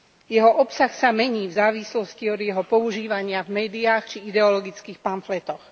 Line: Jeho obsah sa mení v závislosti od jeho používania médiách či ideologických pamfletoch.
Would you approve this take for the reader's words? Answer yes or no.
no